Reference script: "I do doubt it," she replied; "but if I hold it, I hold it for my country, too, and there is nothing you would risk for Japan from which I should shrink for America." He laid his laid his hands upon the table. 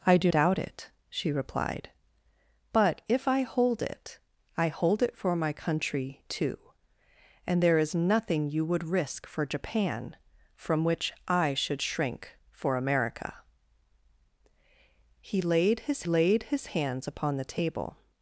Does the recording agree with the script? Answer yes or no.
yes